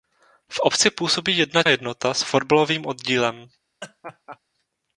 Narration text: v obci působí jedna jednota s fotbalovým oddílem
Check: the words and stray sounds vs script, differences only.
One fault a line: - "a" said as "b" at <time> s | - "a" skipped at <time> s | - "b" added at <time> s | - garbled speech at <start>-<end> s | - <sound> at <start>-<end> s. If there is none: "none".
- laugh at 3.8-4.4 s